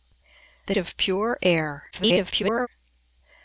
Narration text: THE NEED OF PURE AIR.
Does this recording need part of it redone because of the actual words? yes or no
yes